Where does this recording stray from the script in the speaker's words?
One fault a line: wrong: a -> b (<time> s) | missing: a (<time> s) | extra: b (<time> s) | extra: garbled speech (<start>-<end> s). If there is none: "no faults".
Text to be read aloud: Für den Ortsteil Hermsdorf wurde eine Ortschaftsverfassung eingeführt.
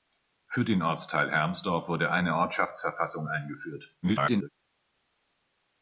extra: garbled speech (4.0-4.5 s)